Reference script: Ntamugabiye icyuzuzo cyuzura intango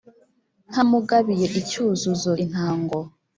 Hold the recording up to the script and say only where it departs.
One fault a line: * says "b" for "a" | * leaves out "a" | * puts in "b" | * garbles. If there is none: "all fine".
* leaves out "cyuzura"